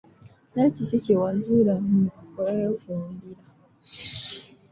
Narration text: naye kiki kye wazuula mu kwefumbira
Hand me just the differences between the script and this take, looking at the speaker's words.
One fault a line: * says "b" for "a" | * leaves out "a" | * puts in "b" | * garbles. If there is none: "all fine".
all fine